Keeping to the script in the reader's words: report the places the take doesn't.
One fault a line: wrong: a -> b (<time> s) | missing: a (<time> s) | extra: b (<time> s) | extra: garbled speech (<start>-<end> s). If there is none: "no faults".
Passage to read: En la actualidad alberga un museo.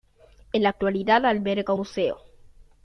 missing: un (1.7 s)